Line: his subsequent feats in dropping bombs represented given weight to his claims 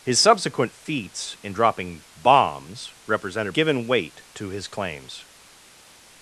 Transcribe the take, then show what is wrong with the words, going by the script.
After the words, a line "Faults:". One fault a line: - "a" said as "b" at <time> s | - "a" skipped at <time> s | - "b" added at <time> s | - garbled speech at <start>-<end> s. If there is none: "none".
his subsequent feats in dropping bombs represented given weight to his claims
Faults:
none